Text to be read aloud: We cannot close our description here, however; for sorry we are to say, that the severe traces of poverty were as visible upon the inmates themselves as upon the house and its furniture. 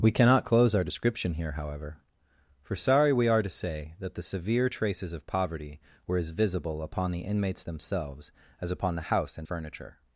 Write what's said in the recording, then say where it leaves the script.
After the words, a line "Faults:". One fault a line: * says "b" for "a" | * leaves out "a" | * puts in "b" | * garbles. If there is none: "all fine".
We cannot close our description here, however; for sorry we are to say, that the severe traces of poverty were as visible upon the inmates themselves as upon the house and furniture.
Faults:
* leaves out "its"